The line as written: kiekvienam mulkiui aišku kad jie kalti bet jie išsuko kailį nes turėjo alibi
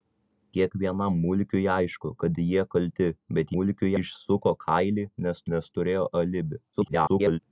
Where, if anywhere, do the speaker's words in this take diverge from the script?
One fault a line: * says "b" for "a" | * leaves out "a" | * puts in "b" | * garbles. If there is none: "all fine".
* says "mulkiui" for "jie"
* puts in "nes"
* garbles